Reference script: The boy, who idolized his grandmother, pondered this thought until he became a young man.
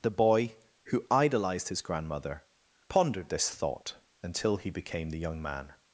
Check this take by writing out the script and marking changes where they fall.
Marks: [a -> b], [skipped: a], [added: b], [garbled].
The boy, who idolized his grandmother, pondered this thought until he became [a -> the] young man.